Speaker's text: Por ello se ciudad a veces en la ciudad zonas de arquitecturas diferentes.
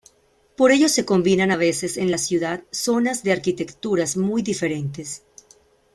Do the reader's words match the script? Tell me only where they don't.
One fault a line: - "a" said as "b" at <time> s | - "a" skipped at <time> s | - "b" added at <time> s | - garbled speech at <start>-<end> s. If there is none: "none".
- "ciudad" said as "combinan" at 1.1 s
- "muy" added at 4.2 s